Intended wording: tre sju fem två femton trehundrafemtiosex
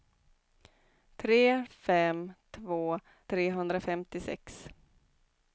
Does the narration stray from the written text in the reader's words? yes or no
yes